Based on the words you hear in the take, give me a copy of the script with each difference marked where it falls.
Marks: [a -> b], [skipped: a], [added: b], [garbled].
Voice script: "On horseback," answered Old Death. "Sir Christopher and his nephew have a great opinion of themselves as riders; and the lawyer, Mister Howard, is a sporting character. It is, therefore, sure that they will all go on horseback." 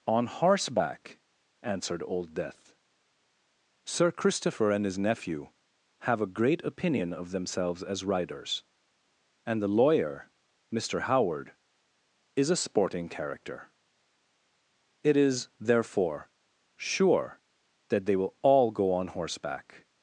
"On horseback," answered Old Death. "Sir Christopher and his nephew have a great opinion of themselves as riders; and the lawyer, Mister Howard, is a sporting character. It is, therefore, sure that they will all go on horseback."